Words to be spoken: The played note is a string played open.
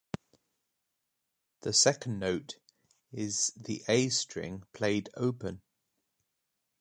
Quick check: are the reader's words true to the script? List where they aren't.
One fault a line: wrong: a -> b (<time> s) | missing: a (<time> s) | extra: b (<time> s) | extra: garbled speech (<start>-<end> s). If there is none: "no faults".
wrong: played -> second (1.7 s)
extra: the (3.6 s)